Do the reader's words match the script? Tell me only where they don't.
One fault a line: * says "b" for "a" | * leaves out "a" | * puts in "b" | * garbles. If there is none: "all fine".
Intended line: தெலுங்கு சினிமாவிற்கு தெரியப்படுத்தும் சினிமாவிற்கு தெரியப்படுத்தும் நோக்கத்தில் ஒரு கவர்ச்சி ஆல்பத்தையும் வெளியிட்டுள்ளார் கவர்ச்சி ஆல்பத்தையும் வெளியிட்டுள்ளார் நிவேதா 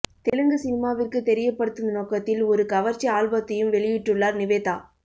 * leaves out "சினிமாவிற்கு தெரியப்படுத்தும்"
* leaves out "கவர்ச்சி ஆல்பத்தையும் வெளியிட்டுள்ளார்"